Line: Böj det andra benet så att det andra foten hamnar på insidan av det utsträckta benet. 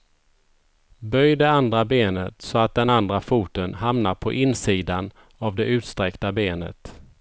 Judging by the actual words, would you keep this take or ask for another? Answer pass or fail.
fail